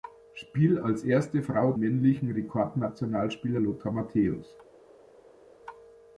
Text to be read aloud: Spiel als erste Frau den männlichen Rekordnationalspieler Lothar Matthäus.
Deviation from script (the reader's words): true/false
true